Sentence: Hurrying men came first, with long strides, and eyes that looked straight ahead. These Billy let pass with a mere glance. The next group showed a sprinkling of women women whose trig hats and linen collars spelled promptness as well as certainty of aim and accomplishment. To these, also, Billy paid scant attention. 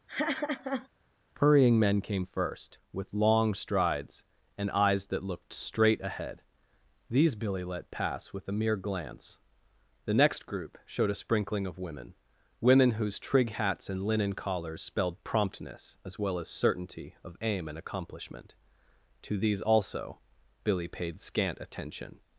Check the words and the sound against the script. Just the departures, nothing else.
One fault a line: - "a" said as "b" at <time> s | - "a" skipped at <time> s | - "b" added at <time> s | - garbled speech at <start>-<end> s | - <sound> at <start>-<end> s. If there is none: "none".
- laugh at 0.1-0.9 s